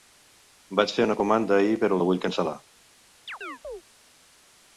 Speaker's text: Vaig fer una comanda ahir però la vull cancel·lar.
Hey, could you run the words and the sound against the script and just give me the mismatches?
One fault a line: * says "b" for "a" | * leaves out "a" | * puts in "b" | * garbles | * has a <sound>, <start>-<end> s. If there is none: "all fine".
* has a chirp, 3.3-3.8 s